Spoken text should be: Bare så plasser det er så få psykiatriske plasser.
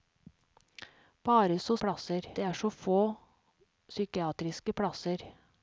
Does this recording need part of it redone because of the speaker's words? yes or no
no